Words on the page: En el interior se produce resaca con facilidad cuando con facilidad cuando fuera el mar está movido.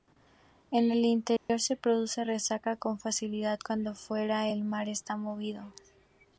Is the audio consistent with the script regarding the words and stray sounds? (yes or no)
no